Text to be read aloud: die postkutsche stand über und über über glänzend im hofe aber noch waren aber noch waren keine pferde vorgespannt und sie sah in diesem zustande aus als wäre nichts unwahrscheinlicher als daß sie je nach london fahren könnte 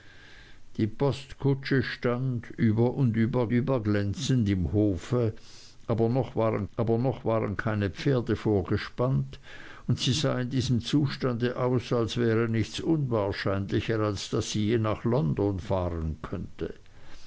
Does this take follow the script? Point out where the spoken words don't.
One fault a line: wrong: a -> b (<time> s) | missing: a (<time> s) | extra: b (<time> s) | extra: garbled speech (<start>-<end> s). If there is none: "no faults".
no faults